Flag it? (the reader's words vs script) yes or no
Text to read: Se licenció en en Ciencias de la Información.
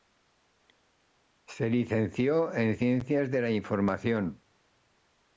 yes